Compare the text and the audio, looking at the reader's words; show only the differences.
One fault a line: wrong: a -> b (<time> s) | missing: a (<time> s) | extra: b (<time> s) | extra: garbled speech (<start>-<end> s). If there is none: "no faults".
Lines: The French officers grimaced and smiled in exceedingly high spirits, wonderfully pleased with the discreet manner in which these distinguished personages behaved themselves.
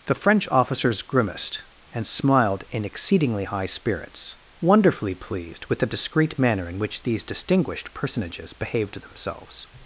no faults